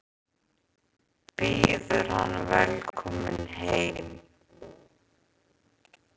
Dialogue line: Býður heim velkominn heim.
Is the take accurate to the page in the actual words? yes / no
no